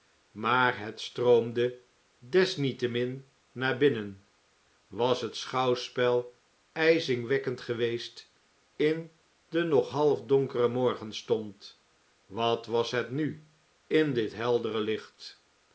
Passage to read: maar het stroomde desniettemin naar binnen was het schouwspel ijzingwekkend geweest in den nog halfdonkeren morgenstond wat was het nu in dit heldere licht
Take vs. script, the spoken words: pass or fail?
pass